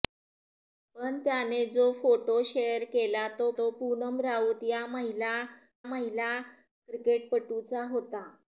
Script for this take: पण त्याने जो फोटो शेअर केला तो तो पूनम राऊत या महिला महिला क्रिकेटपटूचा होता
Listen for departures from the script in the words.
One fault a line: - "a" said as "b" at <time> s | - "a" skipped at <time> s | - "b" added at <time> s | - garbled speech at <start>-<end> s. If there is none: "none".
none